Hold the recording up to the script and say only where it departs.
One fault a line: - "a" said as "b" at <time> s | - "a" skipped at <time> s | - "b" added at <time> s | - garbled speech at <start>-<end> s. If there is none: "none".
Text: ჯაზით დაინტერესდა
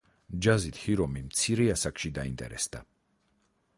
- "ჰირომი მცირე ასაკში" added at 0.8 s